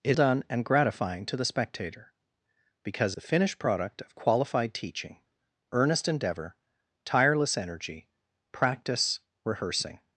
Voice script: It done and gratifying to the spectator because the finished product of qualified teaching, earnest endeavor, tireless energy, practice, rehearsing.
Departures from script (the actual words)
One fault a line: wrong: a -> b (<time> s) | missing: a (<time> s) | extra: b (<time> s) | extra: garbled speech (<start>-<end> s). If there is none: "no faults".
no faults